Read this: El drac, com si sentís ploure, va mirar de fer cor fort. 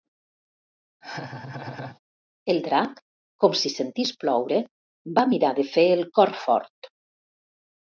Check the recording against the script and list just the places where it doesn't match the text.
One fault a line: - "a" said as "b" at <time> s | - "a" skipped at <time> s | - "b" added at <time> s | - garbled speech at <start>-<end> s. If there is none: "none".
- "el" added at 6.0 s